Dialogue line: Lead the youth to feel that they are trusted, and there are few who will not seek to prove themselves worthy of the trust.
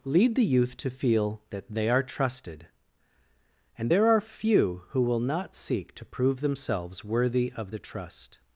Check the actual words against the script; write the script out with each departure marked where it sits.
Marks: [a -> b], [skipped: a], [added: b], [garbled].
Lead the youth to feel that they are trusted, and there are few who will not seek to prove themselves worthy of the trust.